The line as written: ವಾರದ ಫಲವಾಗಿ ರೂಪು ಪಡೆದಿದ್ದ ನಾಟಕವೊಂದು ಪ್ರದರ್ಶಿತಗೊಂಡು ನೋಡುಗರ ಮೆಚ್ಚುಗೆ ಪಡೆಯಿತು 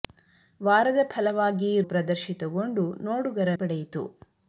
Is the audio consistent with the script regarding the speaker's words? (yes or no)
no